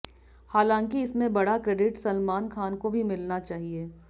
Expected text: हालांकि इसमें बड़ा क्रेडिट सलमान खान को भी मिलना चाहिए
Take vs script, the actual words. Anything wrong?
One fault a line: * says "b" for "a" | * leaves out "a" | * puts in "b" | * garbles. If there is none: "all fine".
all fine